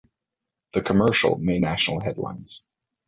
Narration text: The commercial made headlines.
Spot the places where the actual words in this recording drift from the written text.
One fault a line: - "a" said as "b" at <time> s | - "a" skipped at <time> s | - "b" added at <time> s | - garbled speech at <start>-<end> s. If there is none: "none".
- "national" added at 1.6 s